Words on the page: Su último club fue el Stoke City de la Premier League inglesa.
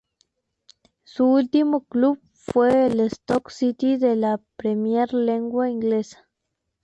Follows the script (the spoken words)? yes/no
yes